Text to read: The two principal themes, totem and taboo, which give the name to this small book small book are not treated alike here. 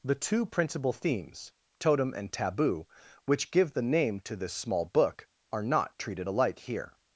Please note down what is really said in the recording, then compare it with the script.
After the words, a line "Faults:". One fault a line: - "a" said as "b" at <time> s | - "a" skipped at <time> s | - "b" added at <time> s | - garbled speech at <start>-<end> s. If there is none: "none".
The two principal themes, totem and taboo, which give the name to this small book are not treated alike here.
Faults:
- "small book" skipped at 5.3 s